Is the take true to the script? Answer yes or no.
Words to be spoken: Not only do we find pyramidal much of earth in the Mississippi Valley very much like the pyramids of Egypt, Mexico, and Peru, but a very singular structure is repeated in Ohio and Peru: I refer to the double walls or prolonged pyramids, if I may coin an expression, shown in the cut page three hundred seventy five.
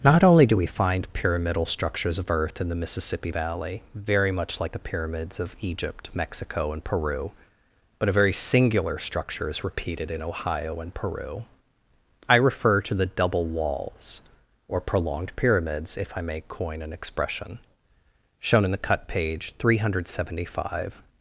no